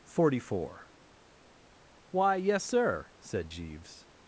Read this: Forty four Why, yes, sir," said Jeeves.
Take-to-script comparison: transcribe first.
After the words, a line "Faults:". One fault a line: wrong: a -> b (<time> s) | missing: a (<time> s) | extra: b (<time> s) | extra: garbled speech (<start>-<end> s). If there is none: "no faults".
Forty four Why, yes, sir," said Jeeves.
Faults:
no faults